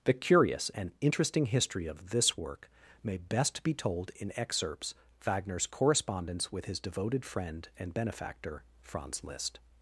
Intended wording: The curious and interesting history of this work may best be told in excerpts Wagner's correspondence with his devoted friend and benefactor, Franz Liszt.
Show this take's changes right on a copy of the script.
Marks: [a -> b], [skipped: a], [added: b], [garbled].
The curious and interesting history of this work may best be told in excerpts Wagner's correspondence with his devoted friend and benefactor, Franz Liszt.